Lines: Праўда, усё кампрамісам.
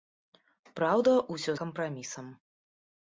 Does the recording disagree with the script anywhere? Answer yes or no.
no